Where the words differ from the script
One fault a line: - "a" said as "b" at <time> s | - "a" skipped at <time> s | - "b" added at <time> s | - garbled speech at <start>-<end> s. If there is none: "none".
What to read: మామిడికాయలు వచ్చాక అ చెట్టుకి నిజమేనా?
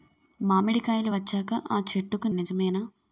none